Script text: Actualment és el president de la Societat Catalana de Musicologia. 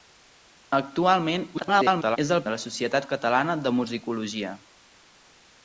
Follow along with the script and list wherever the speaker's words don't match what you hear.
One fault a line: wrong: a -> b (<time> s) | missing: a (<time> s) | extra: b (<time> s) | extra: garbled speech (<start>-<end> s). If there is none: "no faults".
extra: garbled speech (1.5-2.2 s)
missing: president (2.4 s)